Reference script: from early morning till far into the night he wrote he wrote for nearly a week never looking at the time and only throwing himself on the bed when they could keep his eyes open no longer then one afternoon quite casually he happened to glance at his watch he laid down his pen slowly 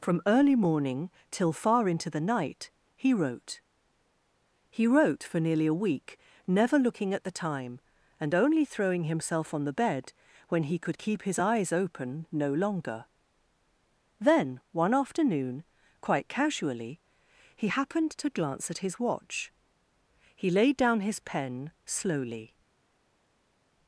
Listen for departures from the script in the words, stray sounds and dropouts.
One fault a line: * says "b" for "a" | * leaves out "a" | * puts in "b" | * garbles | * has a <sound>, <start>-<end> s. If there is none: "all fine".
* says "he" for "they"